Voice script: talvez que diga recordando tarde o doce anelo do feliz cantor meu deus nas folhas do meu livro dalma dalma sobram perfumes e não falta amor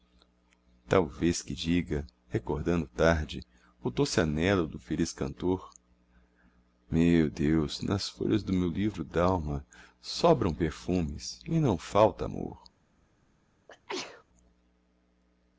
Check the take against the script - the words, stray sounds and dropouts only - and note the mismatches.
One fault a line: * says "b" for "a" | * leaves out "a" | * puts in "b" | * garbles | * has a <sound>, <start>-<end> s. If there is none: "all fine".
* leaves out "dalma"
* has a sneeze, 13.7-14.2 s